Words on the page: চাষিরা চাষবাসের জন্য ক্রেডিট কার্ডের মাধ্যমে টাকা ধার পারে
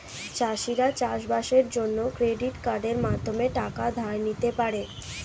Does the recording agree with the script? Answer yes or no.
no